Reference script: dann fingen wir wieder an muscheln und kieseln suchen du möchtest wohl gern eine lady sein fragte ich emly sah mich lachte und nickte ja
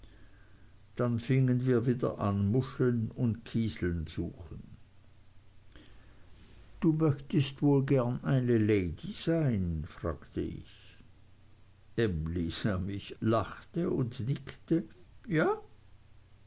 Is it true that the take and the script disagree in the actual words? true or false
false